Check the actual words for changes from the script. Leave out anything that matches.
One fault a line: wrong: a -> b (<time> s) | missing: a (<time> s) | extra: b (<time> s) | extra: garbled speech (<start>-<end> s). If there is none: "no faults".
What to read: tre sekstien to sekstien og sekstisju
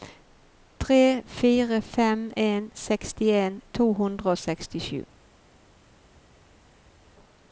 extra: fire fem en (1.2 s)
wrong: sekstien -> hundre (3.9 s)